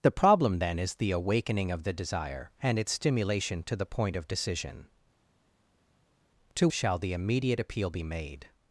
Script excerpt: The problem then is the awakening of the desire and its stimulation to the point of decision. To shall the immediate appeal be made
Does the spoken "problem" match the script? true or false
true